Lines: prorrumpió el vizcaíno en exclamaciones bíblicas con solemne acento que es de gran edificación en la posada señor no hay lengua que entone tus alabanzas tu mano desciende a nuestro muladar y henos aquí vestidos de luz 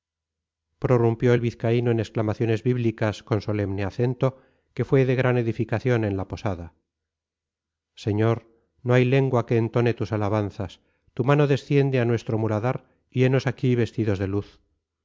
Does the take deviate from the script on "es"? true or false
true